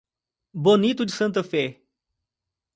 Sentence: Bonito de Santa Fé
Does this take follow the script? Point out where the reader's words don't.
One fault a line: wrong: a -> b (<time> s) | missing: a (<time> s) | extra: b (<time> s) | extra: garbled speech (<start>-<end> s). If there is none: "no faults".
no faults